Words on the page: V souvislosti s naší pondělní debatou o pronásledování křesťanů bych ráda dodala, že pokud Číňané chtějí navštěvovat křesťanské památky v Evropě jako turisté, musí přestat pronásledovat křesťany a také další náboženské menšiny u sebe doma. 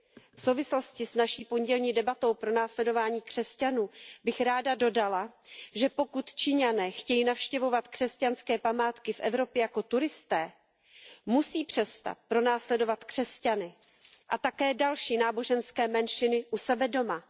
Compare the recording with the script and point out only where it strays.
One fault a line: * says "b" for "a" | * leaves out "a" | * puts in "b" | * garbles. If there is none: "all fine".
all fine